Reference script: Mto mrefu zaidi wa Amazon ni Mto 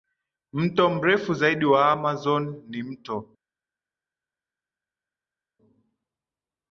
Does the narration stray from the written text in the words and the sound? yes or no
no